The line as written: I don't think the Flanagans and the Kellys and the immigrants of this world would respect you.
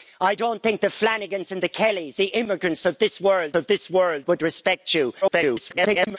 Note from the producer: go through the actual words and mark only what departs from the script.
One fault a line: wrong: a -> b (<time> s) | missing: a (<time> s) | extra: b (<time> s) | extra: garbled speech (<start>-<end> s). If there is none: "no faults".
missing: and (2.2 s)
extra: of this world (3.5 s)
extra: garbled speech (5.2-6.2 s)